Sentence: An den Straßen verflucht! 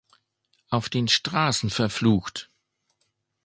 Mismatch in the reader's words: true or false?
true